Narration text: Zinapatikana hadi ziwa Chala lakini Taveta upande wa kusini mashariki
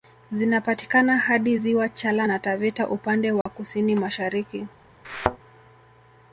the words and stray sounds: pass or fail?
fail